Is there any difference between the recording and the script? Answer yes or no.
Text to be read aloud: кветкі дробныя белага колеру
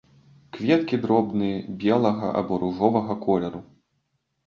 yes